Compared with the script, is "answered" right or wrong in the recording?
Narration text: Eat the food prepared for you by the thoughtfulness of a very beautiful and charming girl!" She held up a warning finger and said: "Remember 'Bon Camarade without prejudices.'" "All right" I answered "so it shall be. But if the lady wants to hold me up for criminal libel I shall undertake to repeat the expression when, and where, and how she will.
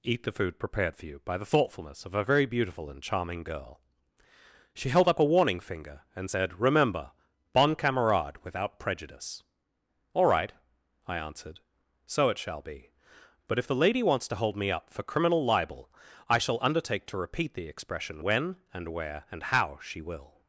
right